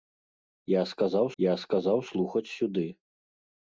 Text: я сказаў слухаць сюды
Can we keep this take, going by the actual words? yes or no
no